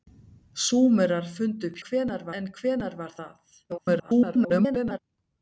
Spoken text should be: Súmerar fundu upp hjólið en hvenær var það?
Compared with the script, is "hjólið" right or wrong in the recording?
wrong